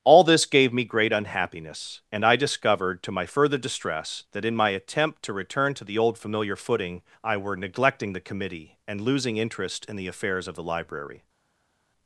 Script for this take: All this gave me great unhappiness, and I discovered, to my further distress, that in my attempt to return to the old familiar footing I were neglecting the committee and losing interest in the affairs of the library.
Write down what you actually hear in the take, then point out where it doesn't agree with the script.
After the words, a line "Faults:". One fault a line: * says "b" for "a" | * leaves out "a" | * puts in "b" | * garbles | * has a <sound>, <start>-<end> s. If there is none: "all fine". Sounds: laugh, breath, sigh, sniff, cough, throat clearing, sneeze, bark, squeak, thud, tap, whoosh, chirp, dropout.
All this gave me great unhappiness, and I discovered, to my further distress, that in my attempt to return to the old familiar footing I were neglecting the committee and losing interest in the affairs of the library.
Faults:
all fine